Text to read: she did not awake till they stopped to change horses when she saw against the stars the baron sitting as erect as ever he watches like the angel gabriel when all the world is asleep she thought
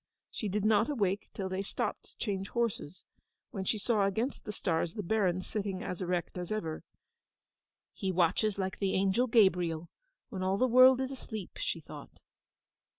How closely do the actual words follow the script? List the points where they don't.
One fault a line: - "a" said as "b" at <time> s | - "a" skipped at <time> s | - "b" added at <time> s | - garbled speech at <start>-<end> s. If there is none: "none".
none